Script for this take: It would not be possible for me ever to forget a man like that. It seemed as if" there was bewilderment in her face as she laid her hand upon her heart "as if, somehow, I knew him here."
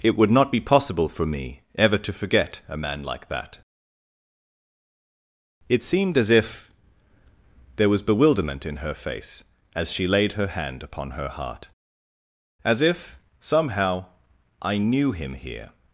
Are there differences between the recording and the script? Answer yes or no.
no